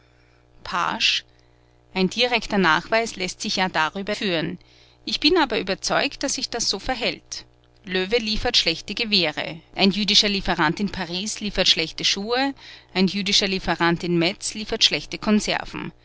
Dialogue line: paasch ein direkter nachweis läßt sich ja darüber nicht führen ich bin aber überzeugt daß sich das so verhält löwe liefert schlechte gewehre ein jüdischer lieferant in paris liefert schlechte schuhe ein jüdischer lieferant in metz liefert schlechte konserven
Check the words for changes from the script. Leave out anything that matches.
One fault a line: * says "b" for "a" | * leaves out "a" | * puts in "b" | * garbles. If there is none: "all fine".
* leaves out "nicht"